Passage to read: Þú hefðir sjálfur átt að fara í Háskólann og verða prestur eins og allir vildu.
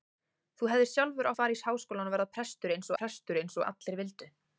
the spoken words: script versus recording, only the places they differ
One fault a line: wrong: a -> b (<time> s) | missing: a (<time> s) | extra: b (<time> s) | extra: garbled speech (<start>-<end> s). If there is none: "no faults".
missing: átt (1.3 s)
extra: prestur eins (3.0 s)